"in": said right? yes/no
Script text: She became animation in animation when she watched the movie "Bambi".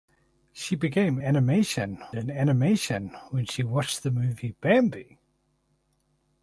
yes